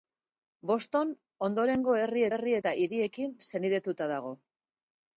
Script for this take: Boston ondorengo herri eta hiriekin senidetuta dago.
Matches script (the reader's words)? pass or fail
fail